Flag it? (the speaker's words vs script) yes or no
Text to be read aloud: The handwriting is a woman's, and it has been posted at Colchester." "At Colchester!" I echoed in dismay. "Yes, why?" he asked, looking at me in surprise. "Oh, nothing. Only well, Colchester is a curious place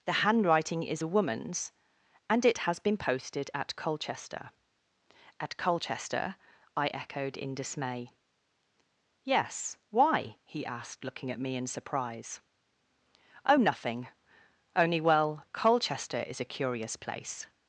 no